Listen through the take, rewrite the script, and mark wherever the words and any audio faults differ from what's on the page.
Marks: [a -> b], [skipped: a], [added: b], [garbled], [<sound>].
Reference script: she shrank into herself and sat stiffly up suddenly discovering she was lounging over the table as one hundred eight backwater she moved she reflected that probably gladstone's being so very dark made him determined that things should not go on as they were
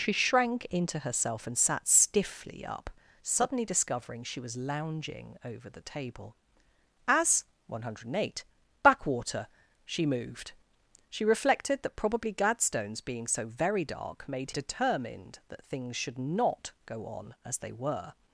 she shrank into herself and sat stiffly up suddenly discovering she was lounging over the table as one hundred eight backwater she moved she reflected that probably gladstone's being so very dark made [skipped: him] determined that things should not go on as they were